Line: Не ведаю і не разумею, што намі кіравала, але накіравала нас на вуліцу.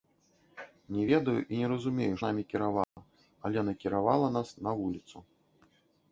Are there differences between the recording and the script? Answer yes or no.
yes